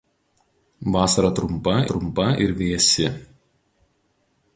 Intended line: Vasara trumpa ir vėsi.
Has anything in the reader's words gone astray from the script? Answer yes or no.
yes